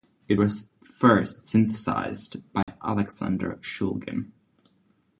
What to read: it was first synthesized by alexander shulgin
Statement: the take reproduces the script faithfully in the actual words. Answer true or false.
true